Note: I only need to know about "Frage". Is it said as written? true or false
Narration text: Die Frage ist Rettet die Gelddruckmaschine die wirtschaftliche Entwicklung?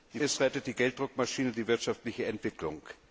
false